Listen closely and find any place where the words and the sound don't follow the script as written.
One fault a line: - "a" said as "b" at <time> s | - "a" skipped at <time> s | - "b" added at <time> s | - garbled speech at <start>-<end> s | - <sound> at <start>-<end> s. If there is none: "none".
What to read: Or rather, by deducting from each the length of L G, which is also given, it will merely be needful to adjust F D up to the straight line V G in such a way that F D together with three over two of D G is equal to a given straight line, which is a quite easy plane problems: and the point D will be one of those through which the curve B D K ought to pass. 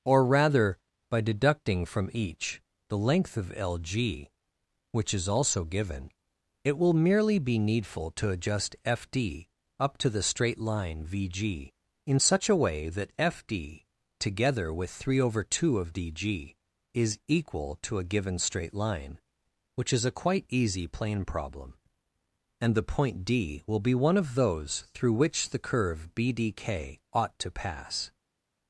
- "problems" said as "problem" at 21.2 s